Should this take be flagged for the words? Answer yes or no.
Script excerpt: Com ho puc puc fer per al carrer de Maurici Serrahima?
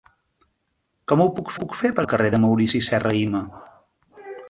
no